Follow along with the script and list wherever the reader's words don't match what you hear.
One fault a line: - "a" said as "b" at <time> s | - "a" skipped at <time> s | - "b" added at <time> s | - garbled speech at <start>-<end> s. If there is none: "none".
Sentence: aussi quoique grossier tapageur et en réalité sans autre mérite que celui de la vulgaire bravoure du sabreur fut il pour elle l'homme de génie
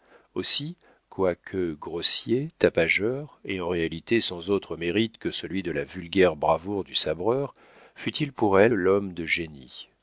none